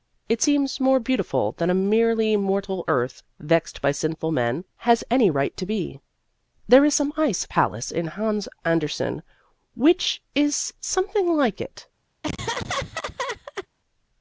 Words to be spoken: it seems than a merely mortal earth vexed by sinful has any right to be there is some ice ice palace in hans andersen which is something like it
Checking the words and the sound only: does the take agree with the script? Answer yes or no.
no